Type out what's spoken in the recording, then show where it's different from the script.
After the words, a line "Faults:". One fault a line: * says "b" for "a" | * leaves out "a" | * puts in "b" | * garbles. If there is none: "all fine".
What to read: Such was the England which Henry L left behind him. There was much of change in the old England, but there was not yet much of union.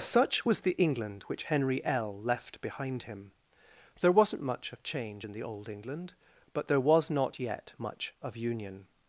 Such was the England which Henry L left behind him. There wasn't much of change in the old England, but there was not yet much of union.
Faults:
* says "wasn't" for "was"